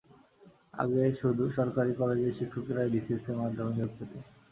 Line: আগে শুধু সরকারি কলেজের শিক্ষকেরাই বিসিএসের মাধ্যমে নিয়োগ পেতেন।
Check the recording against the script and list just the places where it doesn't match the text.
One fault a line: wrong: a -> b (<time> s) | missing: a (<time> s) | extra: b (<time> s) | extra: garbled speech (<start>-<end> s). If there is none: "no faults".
no faults